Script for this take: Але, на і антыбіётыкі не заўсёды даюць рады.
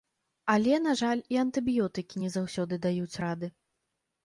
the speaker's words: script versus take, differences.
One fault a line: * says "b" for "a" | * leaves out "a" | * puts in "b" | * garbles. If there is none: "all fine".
* puts in "жаль"